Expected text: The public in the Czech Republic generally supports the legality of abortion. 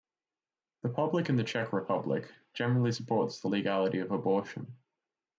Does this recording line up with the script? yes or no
yes